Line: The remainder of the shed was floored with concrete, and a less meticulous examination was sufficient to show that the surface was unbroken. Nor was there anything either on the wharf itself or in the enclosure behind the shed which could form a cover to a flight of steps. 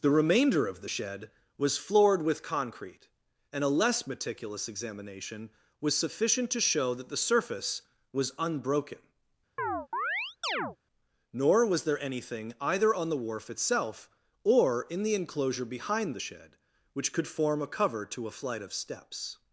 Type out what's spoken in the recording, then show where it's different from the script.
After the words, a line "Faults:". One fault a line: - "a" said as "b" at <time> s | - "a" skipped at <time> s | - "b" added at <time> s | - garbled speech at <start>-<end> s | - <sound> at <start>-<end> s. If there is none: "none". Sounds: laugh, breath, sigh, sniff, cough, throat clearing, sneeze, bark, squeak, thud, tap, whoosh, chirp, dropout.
The remainder of the shed was floored with concrete, and a less meticulous examination was sufficient to show that the surface was unbroken. Nor was there anything either on the wharf itself or in the enclosure behind the shed which could form a cover to a flight of steps.
Faults:
- chirp at 9.6-10.8 s